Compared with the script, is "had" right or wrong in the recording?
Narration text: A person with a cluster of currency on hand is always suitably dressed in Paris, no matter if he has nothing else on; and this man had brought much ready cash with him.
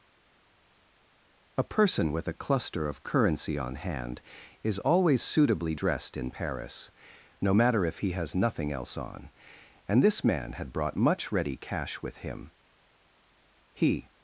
right